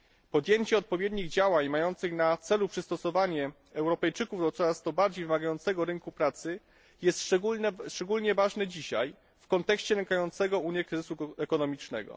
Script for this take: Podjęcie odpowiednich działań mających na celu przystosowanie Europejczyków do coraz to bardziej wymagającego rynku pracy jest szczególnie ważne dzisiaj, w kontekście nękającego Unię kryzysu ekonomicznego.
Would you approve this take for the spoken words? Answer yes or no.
yes